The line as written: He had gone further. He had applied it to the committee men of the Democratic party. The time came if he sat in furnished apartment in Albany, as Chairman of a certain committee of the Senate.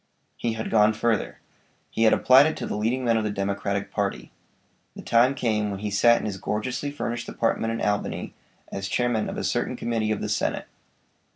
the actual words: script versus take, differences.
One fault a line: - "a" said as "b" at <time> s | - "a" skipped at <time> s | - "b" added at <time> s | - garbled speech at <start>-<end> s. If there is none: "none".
- "committee" said as "leading" at 2.8 s
- "if" said as "when" at 5.7 s
- "his gorgeously" added at 6.2 s